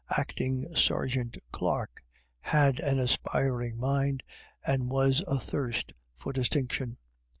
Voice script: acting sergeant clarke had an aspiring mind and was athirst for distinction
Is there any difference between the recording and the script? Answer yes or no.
no